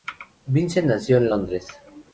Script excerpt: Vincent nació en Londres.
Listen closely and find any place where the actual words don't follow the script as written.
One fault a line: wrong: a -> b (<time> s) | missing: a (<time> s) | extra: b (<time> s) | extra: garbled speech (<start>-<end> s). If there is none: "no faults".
no faults